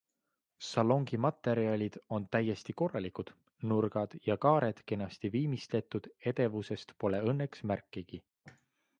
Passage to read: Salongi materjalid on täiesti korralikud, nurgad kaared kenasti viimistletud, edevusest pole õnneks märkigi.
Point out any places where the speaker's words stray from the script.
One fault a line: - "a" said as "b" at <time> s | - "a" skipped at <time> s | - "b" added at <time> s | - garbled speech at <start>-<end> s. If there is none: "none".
- "ja" added at 4.3 s